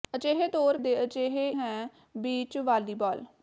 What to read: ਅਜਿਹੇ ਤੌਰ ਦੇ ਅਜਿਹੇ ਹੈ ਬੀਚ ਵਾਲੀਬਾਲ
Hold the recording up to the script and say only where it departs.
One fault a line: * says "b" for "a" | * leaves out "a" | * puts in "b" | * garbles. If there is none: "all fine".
all fine